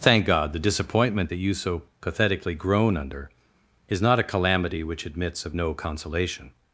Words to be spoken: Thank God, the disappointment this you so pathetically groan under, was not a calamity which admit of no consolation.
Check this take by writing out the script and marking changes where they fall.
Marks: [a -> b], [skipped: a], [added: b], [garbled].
Thank God, the disappointment [this -> that] you so pathetically groan under, [was -> is] not a calamity which [admit -> admits] of no consolation.